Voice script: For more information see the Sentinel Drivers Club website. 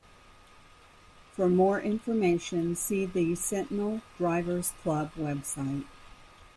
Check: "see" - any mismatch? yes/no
no